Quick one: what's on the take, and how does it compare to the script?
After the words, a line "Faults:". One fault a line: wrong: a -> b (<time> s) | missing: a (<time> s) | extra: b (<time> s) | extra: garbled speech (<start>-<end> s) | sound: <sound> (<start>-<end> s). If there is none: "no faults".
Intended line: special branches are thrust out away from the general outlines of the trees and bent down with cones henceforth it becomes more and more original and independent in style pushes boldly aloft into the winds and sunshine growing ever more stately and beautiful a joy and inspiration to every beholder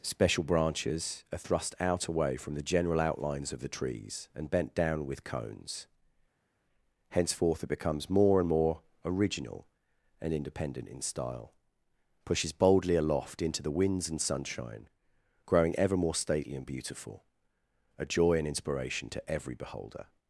special branches are thrust out away from the general outlines of the trees and bent down with cones henceforth it becomes more and more original and independent in style pushes boldly aloft into the winds and sunshine growing ever more stately and beautiful a joy and inspiration to every beholder
Faults:
no faults